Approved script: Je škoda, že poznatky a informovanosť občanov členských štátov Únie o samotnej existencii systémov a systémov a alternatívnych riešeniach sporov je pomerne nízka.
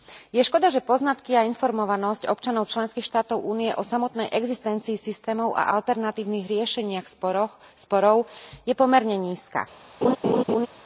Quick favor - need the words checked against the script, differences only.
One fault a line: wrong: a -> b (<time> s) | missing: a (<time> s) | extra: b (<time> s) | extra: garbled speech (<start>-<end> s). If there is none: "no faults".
missing: systémov a (5.8 s)